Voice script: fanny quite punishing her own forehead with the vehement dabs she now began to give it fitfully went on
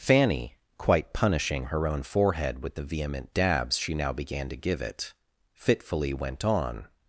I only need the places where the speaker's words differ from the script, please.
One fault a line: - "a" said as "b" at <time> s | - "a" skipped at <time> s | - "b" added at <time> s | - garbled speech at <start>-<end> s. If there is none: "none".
none